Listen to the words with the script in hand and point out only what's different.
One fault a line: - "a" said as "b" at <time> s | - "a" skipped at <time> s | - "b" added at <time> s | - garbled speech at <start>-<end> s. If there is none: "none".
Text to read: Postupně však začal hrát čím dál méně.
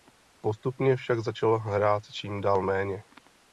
none